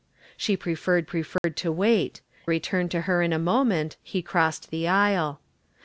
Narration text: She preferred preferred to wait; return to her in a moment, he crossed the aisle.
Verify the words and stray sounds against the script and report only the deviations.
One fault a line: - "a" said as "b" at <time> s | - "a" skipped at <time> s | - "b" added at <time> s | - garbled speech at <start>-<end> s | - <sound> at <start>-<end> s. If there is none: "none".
- dropout at 1.4-1.4 s